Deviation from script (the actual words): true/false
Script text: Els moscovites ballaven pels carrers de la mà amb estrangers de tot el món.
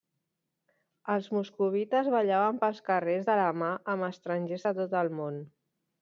false